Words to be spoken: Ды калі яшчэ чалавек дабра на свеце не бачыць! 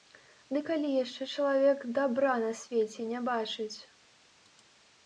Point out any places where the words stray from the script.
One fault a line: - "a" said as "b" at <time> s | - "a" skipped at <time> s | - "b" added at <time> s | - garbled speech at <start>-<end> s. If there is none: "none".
none